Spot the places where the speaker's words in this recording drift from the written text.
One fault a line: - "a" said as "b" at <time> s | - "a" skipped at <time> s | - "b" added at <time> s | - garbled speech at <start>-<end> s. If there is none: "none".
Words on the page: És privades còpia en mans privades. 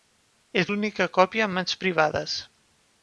- "privades" said as "l'única" at 0.7 s